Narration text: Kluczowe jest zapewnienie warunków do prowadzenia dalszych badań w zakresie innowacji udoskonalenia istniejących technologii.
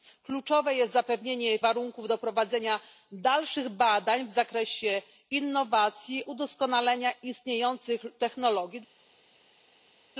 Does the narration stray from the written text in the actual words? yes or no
no